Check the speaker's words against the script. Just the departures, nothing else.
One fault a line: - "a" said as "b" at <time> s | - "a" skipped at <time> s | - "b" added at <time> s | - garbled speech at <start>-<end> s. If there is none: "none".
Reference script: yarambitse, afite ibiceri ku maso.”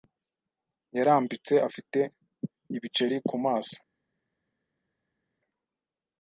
none